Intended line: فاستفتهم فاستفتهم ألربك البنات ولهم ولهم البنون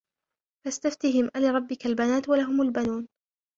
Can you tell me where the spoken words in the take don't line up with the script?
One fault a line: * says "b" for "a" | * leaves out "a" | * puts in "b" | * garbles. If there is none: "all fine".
* leaves out "فاستفتهم"
* leaves out "ولهم"